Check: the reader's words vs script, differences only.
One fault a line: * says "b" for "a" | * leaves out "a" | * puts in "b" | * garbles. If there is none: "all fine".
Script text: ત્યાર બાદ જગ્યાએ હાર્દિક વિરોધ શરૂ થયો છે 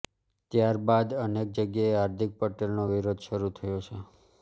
* puts in "અનેક"
* puts in "પટેલનો"